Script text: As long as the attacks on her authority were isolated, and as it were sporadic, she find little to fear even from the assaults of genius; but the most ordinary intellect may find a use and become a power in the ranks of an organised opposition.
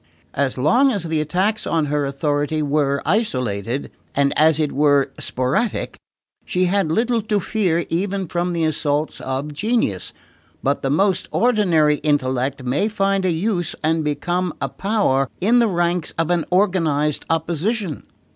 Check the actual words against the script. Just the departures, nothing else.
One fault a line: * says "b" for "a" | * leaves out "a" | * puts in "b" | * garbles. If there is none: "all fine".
* says "had" for "find"